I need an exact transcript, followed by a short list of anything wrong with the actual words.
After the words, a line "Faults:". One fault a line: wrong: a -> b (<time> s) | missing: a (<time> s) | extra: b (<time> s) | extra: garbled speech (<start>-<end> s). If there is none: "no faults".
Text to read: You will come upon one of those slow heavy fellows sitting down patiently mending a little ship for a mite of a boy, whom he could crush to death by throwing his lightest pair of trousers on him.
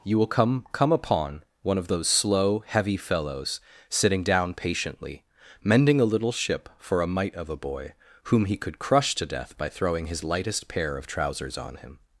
You will come come upon one of those slow heavy fellows sitting down patiently mending a little ship for a mite of a boy, whom he could crush to death by throwing his lightest pair of trousers on him.
Faults:
extra: come (0.7 s)